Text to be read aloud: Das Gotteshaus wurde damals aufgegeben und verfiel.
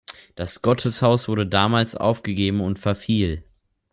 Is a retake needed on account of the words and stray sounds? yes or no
no